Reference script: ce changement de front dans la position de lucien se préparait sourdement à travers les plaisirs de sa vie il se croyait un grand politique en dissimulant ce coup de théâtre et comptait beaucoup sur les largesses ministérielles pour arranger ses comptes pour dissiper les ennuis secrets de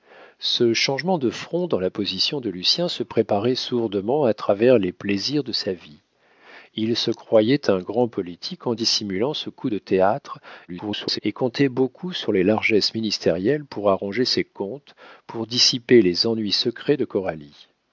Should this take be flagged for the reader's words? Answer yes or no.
yes